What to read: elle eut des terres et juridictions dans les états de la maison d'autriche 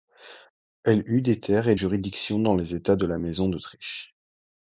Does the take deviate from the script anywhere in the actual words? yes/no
no